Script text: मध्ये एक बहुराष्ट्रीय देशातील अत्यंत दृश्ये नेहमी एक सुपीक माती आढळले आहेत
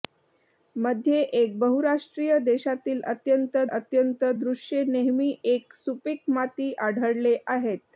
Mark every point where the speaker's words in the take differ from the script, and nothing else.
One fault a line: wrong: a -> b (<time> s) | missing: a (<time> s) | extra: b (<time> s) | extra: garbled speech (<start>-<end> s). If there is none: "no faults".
extra: अत्यंत (3.7 s)